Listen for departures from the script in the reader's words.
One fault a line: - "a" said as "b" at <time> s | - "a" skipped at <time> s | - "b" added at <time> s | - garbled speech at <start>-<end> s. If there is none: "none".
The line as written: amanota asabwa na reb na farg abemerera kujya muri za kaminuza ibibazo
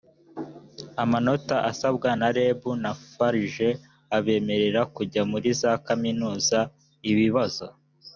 none